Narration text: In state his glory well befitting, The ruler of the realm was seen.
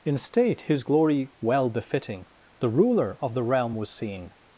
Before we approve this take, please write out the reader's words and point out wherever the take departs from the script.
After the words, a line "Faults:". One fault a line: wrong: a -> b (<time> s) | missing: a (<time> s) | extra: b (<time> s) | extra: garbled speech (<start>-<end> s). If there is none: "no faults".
In state his glory well befitting, The ruler of the realm was seen.
Faults:
no faults